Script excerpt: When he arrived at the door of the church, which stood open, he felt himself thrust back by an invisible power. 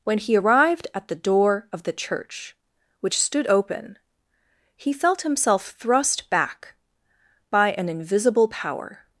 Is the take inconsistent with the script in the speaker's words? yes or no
no